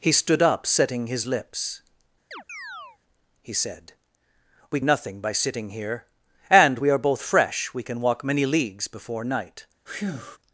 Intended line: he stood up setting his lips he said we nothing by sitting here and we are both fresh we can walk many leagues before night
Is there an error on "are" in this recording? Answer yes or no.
no